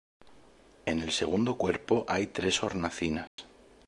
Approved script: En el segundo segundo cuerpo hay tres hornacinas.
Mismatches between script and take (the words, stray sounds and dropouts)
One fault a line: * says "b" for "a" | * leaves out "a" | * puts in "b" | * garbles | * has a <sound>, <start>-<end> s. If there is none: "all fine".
* leaves out "segundo"
* has a dropout, 3.3-3.4 s